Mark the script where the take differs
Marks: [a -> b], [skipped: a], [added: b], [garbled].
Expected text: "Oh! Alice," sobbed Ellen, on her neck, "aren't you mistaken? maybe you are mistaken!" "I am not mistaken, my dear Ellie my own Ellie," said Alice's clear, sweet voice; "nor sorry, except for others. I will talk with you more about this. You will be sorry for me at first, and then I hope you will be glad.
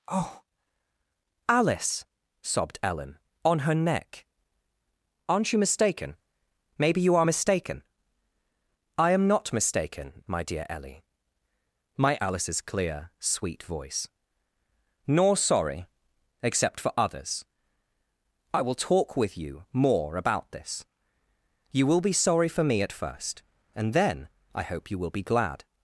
"Oh! Alice," sobbed Ellen, on her neck, "aren't you mistaken? maybe you are mistaken!" "I am not mistaken, my dear Ellie my [skipped: own Ellie," said] Alice's clear, sweet voice; "nor sorry, except for others. I will talk with you more about this. You will be sorry for me at first, and then I hope you will be glad.